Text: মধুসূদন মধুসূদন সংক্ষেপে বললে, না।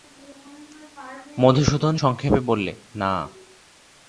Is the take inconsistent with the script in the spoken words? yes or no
yes